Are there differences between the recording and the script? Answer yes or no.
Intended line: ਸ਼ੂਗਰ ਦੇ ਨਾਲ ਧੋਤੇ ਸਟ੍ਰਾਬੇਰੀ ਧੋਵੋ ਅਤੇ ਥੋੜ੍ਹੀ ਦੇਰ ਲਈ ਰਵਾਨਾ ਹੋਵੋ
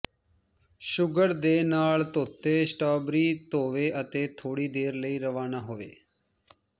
no